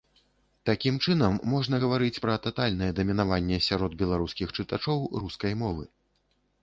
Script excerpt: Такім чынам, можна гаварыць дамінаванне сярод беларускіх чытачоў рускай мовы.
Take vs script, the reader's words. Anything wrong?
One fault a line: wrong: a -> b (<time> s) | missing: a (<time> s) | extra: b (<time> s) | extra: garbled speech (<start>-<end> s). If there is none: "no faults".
extra: пра татальнае (2.2 s)